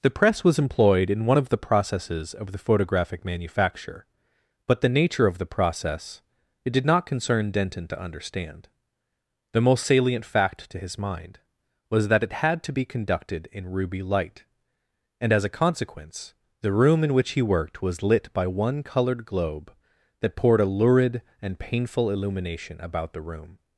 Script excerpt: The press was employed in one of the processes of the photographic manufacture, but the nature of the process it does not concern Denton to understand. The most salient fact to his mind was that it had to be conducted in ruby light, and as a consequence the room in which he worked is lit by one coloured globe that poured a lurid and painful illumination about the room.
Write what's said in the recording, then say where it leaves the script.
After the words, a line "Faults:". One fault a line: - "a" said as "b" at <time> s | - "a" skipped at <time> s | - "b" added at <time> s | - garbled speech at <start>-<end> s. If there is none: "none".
The press was employed in one of the processes of the photographic manufacture, but the nature of the process it did not concern Denton to understand. The most salient fact to his mind was that it had to be conducted in ruby light, and as a consequence the room in which he worked was lit by one coloured globe that poured a lurid and painful illumination about the room.
Faults:
- "does" said as "did" at 6.7 s
- "is" said as "was" at 17.8 s